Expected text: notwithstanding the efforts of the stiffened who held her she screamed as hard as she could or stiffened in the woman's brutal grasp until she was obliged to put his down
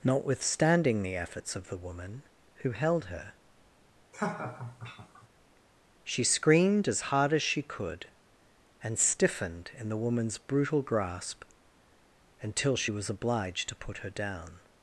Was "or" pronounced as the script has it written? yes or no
no